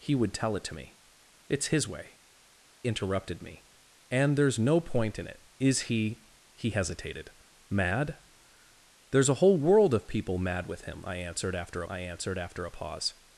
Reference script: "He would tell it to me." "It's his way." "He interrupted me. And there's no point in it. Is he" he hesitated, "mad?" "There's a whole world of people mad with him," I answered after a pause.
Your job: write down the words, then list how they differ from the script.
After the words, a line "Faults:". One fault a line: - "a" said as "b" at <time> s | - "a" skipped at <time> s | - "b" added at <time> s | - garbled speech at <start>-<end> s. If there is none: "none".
"He would tell it to me." "It's his way." "Interrupted me. And there's no point in it. Is he" he hesitated, "mad?" "There's a whole world of people mad with him," I answered after I answered after a pause.
Faults:
- "He" skipped at 2.2 s
- "I answered after" added at 11.9 s